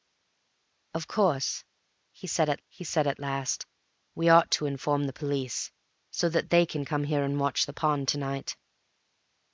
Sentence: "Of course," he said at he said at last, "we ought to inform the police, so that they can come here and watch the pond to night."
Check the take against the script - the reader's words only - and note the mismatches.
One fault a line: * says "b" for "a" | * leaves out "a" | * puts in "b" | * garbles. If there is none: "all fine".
all fine